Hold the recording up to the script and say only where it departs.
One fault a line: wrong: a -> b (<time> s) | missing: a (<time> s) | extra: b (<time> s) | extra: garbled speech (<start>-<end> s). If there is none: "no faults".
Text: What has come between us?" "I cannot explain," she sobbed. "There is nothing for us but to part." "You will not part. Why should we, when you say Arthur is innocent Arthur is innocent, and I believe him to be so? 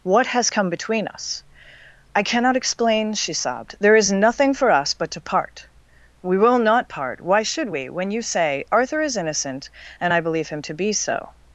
wrong: You -> We (6.2 s)
missing: Arthur is innocent (9.7 s)